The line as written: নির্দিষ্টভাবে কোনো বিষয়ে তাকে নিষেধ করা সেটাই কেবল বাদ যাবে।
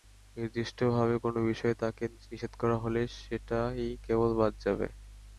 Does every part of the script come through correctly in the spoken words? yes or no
no